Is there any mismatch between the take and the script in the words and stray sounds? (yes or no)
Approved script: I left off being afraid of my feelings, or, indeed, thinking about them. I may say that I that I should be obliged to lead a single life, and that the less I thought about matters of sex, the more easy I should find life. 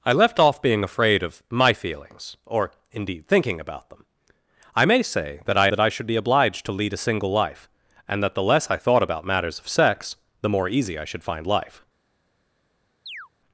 yes